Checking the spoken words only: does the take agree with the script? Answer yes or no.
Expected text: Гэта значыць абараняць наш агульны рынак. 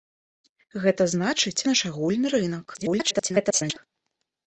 no